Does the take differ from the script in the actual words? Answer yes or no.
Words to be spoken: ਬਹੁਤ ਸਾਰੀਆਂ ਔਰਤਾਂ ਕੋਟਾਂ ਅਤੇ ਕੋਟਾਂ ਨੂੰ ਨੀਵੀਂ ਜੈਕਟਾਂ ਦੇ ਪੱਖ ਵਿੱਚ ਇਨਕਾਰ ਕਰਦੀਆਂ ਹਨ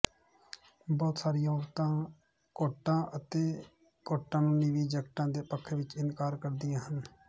no